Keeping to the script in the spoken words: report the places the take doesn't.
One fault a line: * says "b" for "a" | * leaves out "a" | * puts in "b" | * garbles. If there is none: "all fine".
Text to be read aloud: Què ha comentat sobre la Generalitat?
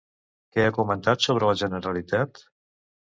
all fine